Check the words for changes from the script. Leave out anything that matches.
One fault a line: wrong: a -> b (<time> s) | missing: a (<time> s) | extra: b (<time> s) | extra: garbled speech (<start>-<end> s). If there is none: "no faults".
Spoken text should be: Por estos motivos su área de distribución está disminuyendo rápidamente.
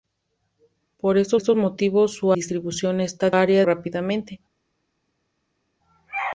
extra: estos (1.3 s)
missing: área de (2.3 s)
wrong: disminuyendo -> área (3.3 s)